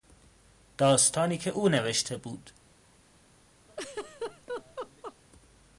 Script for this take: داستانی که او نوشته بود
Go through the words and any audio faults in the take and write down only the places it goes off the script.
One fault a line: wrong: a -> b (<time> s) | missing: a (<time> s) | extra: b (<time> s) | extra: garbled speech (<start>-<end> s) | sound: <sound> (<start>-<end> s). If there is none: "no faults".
sound: laugh (3.7-5.2 s)